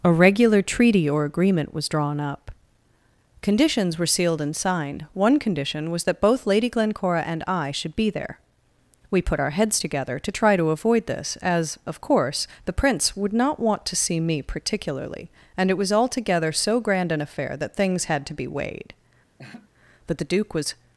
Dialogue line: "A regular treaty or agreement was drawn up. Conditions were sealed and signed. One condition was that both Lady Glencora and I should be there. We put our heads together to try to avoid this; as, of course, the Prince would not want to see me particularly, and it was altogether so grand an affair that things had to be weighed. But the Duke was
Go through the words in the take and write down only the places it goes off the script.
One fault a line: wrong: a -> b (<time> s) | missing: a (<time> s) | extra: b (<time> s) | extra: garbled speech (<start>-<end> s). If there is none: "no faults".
no faults